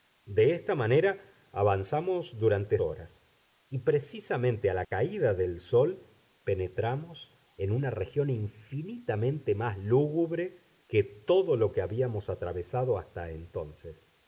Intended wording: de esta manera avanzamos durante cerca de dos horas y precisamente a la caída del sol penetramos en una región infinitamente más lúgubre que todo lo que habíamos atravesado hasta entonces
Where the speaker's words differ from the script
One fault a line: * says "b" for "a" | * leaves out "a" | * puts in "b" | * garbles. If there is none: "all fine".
* leaves out "cerca de dos"